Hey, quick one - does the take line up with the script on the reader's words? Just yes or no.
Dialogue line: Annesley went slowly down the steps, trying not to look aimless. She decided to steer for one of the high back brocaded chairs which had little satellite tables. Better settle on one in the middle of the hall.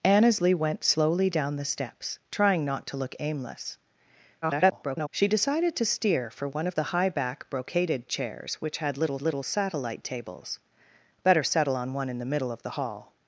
no